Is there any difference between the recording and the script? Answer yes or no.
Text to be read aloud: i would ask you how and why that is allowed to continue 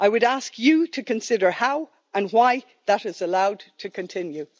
yes